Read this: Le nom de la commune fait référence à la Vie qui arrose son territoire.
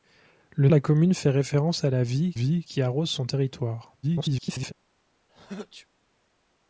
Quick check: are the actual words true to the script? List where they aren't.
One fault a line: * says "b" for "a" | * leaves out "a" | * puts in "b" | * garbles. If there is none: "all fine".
* leaves out "nom"
* puts in "Vie"
* garbles